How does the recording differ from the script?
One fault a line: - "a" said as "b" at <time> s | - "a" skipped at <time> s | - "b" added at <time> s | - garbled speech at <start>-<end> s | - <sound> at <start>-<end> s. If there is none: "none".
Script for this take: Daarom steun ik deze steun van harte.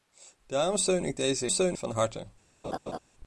- laugh at 2.6-3.0 s